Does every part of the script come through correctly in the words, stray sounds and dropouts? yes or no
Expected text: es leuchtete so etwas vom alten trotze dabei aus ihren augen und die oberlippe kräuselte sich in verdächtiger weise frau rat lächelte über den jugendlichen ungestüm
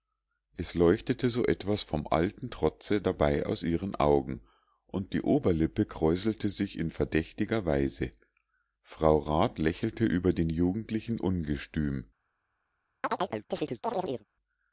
no